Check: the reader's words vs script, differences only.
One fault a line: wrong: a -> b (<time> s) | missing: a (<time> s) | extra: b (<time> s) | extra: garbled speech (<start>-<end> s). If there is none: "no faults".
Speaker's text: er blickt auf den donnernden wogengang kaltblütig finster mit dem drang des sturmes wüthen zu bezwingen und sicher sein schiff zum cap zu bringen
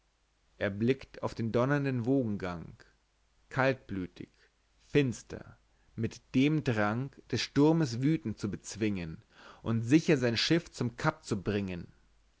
no faults